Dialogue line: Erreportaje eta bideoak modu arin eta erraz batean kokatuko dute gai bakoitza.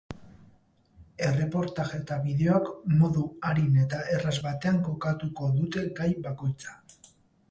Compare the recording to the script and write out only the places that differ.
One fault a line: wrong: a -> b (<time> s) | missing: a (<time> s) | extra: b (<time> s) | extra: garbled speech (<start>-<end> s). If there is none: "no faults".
no faults